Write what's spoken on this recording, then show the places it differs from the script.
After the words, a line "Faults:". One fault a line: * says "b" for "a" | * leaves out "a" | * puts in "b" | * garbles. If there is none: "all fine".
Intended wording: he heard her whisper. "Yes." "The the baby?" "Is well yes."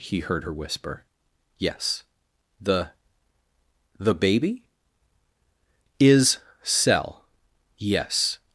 he heard her whisper. "Yes." "The the baby?" "Is cell yes."
Faults:
* says "cell" for "well"